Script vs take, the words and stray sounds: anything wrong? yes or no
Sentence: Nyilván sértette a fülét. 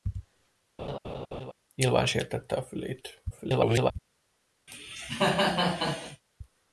yes